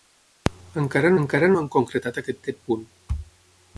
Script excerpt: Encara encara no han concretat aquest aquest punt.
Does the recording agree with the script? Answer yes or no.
yes